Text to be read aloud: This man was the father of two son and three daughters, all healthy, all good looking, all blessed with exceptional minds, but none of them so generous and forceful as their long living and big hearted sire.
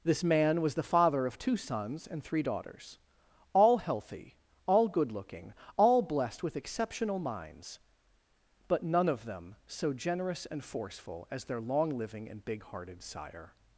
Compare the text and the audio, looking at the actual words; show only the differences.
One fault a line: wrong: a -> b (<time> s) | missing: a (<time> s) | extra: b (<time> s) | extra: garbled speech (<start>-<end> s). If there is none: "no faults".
wrong: son -> sons (1.6 s)